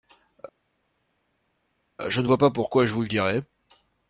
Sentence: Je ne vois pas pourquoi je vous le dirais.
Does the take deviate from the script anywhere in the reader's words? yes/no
no